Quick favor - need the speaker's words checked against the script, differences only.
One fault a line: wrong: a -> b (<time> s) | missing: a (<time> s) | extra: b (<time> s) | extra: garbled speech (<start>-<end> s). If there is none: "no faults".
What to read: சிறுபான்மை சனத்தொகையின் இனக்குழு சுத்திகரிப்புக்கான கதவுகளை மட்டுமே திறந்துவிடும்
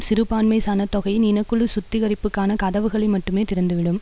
no faults